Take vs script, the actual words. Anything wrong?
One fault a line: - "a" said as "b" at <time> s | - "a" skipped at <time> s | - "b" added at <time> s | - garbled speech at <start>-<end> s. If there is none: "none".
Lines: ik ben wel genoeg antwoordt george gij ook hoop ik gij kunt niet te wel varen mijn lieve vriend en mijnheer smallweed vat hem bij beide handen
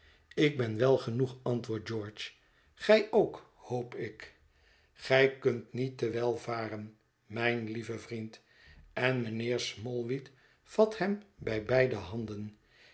none